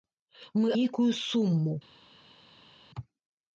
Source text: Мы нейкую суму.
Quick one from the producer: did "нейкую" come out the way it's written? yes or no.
yes